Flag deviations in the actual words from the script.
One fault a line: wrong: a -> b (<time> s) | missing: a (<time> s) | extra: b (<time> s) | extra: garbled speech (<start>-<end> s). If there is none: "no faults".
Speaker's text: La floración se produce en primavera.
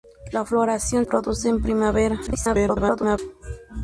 missing: se (1.1 s)
extra: garbled speech (2.3-3.2 s)